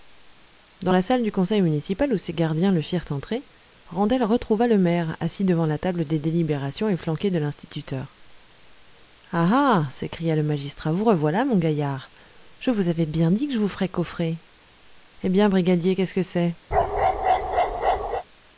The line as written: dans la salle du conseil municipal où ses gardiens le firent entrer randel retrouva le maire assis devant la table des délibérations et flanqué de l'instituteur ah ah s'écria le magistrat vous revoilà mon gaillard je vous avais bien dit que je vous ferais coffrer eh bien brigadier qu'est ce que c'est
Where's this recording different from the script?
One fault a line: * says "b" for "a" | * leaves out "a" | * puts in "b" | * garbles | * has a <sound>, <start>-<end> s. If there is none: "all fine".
* has a bark, 16.7-18.2 s